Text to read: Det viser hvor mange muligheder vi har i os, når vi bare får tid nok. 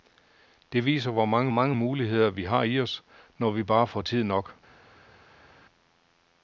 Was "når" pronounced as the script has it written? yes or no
yes